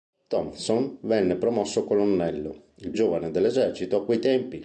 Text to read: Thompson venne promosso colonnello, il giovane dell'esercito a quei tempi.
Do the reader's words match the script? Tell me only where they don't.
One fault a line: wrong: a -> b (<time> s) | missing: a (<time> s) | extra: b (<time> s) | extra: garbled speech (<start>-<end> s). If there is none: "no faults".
no faults